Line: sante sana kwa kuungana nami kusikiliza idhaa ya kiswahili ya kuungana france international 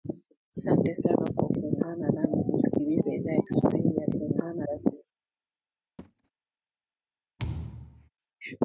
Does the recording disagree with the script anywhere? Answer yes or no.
no